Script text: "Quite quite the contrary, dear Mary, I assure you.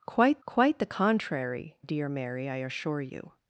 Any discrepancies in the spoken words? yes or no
no